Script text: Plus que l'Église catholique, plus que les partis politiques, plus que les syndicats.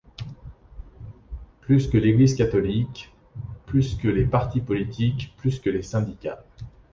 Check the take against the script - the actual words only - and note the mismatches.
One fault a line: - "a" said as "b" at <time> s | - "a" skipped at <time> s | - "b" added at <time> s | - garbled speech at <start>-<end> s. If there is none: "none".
none